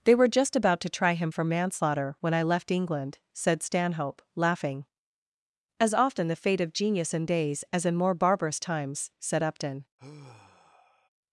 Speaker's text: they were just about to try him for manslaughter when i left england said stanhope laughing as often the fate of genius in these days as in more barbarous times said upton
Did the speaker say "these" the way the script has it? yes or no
no